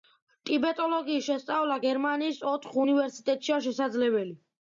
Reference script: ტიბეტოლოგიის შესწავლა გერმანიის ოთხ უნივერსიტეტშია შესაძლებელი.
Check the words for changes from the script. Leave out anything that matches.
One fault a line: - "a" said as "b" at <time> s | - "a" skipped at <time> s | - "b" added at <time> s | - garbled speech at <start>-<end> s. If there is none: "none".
none